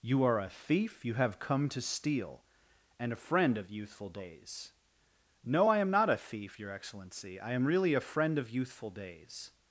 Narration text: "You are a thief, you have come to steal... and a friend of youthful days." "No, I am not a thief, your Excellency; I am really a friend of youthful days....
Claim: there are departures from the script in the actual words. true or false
false